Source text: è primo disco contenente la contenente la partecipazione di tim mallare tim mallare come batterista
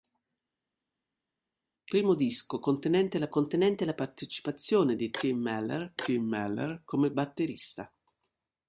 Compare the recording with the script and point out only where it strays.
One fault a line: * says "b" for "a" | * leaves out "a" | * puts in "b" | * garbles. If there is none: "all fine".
all fine